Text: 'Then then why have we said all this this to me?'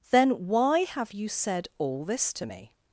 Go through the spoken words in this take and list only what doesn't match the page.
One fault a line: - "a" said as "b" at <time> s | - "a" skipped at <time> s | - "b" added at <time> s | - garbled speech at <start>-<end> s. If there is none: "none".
- "then" skipped at 0.5 s
- "we" said as "you" at 1.1 s
- "this" skipped at 2.3 s